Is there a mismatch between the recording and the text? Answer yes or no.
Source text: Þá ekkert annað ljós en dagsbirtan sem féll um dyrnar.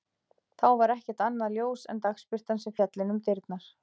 yes